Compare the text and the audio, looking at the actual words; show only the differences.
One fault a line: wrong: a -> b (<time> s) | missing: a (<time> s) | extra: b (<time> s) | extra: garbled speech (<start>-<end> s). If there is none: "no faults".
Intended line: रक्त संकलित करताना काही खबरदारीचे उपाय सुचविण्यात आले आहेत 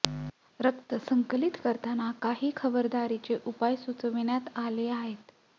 no faults